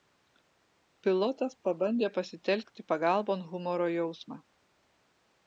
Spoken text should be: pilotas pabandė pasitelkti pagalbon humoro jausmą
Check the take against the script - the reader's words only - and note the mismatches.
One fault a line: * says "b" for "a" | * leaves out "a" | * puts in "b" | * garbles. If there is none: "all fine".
all fine